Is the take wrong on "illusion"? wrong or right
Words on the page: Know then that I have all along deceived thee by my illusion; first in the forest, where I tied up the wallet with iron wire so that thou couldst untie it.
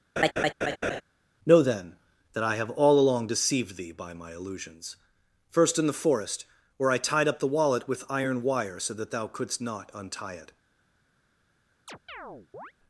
wrong